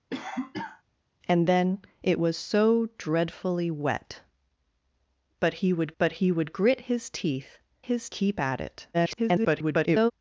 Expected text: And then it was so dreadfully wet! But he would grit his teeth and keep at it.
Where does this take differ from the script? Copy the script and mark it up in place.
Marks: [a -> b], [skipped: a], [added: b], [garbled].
And then it was so dreadfully wet! But he would [added: but he would] grit his teeth [and -> his] keep at it. [garbled]